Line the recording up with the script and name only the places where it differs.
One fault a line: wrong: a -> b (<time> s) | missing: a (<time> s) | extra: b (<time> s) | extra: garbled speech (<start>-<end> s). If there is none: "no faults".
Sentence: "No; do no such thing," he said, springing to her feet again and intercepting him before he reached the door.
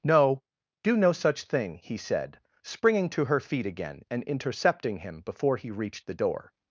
no faults